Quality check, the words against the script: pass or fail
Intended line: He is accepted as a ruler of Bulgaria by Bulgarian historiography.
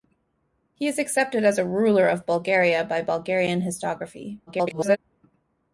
fail